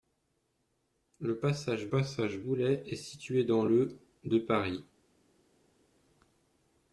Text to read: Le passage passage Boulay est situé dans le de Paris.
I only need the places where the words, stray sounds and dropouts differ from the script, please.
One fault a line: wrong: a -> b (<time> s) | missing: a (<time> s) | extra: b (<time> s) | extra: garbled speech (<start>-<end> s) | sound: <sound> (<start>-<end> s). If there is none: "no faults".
no faults